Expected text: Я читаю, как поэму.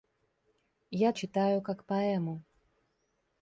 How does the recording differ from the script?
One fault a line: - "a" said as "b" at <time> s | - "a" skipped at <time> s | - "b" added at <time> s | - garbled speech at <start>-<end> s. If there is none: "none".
none